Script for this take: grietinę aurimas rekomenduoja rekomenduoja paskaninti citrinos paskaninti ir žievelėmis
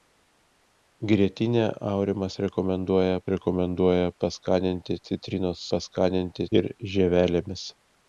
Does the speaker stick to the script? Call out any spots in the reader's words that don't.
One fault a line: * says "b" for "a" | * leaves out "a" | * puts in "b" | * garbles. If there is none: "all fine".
all fine